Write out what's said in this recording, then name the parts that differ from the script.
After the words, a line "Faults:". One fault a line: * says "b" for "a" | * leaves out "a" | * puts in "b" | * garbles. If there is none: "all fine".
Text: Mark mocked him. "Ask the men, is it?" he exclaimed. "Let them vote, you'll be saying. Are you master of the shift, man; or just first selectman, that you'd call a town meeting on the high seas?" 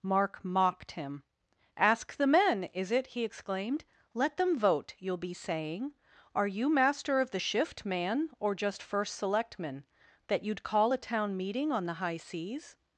Mark mocked him. "Ask the men, is it?" he exclaimed. "Let them vote, you'll be saying. Are you master of the shift, man; or just first selectman, that you'd call a town meeting on the high seas?"
Faults:
all fine